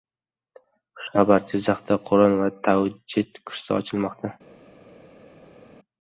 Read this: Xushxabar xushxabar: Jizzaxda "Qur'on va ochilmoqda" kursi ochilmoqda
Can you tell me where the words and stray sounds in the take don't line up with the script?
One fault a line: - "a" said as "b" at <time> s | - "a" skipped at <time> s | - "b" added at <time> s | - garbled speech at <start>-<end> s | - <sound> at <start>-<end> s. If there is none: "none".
- "xushxabar" skipped at 1.4 s
- "ochilmoqda" said as "tajvid" at 2.7 s